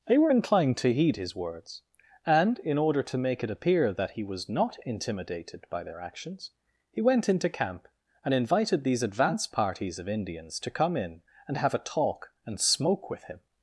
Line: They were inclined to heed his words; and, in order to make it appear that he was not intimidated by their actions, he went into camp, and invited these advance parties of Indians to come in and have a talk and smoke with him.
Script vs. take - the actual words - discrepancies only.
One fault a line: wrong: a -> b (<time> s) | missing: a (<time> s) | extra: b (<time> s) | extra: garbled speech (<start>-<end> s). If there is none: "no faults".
no faults